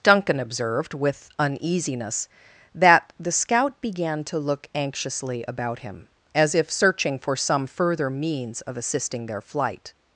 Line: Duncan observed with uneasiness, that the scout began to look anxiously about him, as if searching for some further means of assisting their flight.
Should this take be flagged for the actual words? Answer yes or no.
no